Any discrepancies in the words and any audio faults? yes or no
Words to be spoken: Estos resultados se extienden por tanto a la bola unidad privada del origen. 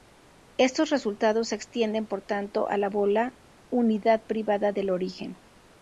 no